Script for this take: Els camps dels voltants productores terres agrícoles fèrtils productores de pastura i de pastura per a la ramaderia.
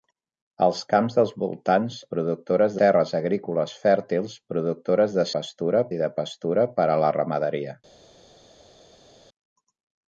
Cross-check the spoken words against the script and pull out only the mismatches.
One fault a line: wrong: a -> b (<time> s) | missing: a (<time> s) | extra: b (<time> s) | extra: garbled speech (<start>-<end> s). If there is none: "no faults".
no faults